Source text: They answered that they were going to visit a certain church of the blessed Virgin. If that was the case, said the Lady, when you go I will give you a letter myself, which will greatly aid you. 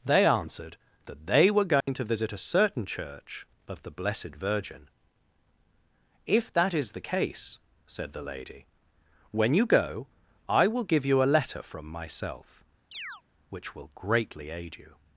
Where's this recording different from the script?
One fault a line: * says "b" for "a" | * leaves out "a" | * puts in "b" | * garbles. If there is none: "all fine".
* says "is" for "was"
* puts in "from"